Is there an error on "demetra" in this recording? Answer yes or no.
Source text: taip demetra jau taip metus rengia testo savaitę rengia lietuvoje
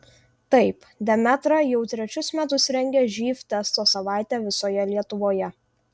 no